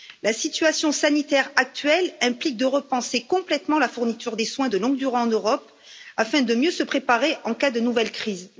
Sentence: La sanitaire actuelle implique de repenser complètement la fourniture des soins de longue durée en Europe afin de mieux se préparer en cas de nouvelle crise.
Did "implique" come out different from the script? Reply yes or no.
no